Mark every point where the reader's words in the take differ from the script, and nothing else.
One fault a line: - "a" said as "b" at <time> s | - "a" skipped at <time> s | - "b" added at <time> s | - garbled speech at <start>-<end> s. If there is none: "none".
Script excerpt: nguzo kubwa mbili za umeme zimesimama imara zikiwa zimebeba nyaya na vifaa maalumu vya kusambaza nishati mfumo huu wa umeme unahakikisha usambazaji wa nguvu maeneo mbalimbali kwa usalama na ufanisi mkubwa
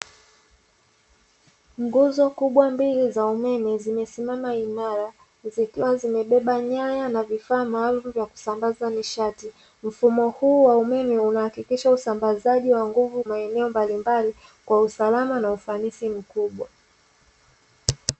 none